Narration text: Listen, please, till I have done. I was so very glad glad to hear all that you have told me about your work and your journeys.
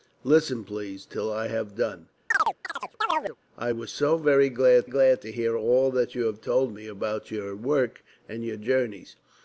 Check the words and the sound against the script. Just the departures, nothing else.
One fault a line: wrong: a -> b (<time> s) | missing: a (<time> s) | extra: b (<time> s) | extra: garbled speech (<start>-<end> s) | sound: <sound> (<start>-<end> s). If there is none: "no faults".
sound: chirp (2.3-3.4 s)